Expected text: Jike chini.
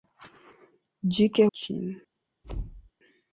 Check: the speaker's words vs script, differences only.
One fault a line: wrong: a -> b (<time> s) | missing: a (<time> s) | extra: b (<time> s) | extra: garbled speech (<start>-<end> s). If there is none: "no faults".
no faults